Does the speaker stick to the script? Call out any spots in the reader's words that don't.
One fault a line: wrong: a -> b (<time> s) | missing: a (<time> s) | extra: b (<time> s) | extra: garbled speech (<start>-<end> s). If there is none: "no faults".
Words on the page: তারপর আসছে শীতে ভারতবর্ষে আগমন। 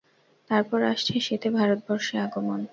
no faults